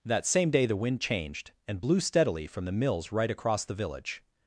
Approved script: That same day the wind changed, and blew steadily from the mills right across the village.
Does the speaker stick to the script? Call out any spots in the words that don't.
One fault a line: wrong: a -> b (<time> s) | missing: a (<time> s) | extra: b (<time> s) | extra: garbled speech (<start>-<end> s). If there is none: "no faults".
no faults